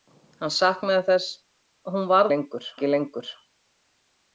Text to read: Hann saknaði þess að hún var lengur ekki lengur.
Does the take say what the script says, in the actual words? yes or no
yes